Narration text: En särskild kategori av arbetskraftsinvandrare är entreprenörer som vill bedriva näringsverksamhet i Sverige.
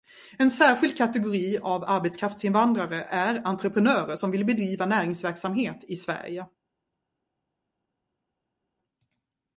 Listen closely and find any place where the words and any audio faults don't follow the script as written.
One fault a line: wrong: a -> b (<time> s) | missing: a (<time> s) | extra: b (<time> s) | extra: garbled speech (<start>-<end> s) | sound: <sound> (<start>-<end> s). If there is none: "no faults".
no faults